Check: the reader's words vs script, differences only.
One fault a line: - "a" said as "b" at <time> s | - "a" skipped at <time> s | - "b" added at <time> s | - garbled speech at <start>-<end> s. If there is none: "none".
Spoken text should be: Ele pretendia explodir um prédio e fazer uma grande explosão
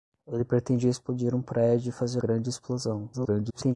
- "uma" skipped at 2.2 s
- garbled speech at 3.1-3.8 s